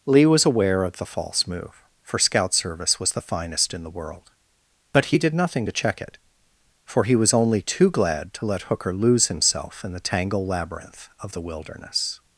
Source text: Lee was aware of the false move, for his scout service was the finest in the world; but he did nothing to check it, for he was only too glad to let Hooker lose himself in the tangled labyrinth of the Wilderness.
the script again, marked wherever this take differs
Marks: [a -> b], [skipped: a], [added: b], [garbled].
Lee was aware of the false move, for [skipped: his] scout service was the finest in the world; but he did nothing to check it, for he was only too glad to let Hooker lose himself in the [tangled -> tangle] labyrinth of the Wilderness.